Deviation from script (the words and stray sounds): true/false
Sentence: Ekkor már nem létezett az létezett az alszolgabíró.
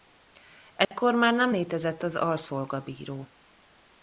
true